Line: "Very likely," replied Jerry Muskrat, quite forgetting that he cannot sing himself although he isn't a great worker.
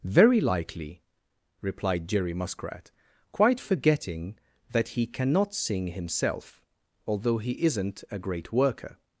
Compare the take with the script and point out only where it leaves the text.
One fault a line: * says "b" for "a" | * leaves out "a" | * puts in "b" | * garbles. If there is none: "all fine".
all fine